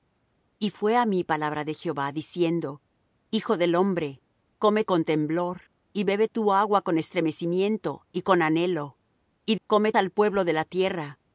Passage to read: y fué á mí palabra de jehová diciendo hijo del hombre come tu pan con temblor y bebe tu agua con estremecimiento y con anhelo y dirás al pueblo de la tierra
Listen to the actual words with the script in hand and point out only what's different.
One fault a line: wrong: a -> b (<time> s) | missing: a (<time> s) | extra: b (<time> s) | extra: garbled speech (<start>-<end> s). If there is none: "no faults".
missing: tu pan (4.8 s)
wrong: dirás -> come (9.7 s)